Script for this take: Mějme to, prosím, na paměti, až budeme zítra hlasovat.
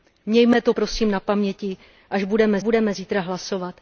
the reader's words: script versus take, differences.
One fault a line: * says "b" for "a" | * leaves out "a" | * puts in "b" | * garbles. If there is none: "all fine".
* puts in "budeme"